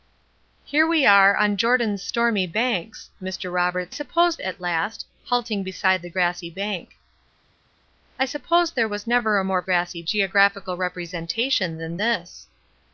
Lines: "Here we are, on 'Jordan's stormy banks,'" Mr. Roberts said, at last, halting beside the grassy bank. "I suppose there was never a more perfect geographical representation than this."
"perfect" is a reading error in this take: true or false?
true